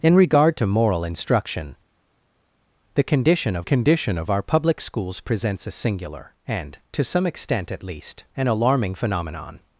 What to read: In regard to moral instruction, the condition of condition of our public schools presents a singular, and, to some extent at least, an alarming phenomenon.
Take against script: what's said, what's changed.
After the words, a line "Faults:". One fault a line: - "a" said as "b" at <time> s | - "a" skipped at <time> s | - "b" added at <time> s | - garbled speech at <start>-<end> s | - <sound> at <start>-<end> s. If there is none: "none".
In regard to moral instruction, the condition of condition of our public schools presents a singular, and, to some extent at least, an alarming phenomenon.
Faults:
none